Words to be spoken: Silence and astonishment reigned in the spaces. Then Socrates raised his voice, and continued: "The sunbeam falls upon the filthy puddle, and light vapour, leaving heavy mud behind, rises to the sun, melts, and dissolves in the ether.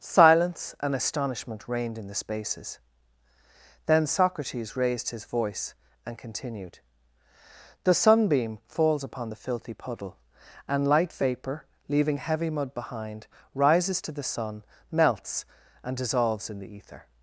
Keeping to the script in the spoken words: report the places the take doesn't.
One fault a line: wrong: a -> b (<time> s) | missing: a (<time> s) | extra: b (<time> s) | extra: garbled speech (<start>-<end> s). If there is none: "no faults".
no faults